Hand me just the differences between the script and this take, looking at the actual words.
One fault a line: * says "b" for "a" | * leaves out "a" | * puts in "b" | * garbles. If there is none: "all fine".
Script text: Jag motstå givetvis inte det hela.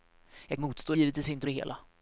all fine